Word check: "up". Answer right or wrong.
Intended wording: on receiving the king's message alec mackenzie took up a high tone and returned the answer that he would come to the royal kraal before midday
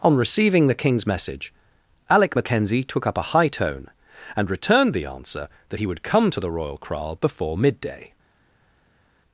right